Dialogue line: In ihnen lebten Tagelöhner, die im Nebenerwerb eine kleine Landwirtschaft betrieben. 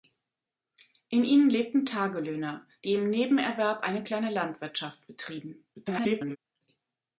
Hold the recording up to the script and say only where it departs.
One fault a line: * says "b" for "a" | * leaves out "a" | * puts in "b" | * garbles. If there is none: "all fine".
* garbles